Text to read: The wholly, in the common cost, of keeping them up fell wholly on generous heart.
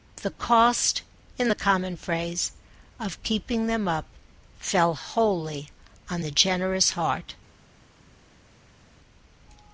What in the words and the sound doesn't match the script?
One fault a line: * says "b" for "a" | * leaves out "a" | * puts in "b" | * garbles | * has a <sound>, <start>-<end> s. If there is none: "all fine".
* says "cost" for "wholly"
* says "phrase" for "cost"
* puts in "the"